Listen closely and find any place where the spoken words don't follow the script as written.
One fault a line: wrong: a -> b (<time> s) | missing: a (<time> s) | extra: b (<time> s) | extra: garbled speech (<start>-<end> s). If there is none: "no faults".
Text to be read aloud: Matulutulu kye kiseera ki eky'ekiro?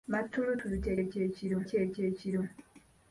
wrong: kiseera -> eky'ekiro (1.0 s)